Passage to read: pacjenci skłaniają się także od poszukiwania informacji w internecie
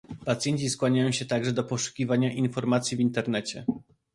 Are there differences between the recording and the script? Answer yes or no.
yes